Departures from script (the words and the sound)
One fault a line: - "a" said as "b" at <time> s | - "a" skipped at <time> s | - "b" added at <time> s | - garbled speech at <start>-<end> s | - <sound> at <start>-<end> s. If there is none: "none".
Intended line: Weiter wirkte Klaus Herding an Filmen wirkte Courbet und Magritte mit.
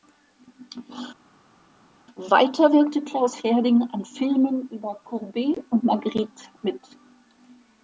- "wirkte" said as "über" at 4.7 s